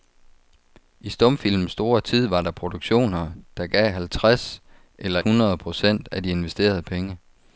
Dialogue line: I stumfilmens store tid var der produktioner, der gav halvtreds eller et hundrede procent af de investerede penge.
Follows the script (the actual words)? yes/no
no